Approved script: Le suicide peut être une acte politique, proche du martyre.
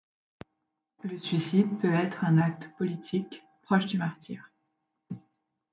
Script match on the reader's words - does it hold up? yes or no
no